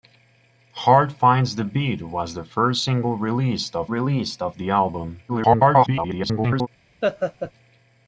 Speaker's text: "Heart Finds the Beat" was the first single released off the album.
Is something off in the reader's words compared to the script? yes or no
yes